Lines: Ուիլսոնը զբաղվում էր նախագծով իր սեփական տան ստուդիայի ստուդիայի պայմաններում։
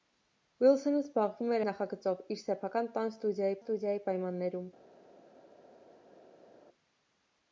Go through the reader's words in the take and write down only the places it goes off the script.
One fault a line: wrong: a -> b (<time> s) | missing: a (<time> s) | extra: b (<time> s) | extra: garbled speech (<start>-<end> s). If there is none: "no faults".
no faults